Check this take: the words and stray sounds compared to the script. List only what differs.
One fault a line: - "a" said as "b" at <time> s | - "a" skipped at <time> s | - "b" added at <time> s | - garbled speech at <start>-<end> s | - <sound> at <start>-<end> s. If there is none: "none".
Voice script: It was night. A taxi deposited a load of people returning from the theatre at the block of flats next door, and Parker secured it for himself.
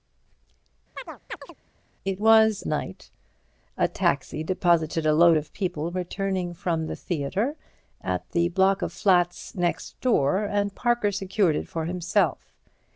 - chirp at 0.9-1.5 s